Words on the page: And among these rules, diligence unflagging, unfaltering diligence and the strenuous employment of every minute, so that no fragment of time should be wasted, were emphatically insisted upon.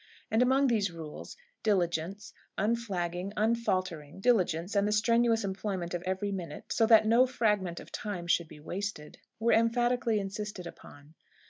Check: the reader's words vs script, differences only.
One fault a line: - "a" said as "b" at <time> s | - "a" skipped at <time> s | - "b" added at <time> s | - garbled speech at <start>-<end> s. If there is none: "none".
none